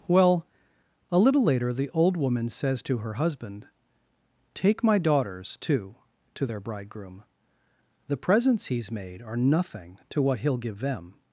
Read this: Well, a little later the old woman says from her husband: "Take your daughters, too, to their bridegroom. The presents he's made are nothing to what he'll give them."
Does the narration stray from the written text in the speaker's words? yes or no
yes